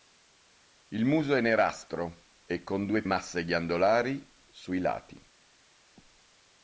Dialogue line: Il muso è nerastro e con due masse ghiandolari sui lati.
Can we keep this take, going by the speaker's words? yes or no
yes